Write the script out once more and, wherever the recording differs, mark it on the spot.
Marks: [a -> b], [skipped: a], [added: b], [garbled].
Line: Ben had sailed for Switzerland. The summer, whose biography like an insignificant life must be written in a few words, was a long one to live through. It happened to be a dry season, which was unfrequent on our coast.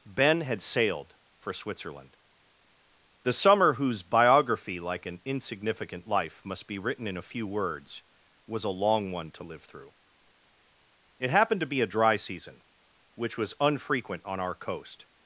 Ben had sailed for Switzerland. The summer, whose biography like an insignificant life must be written in a few words, was a long one to live through. It happened to be a dry season, which was unfrequent on our coast.